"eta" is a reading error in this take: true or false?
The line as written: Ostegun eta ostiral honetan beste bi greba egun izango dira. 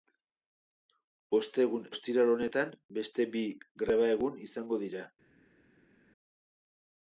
true